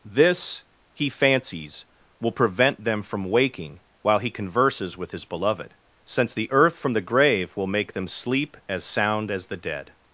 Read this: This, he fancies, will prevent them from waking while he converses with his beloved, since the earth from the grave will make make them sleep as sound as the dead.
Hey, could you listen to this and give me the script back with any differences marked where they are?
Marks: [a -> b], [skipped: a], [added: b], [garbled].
This, he fancies, will prevent them from waking while he converses with his beloved, since the earth from the grave will make [skipped: make] them sleep as sound as the dead.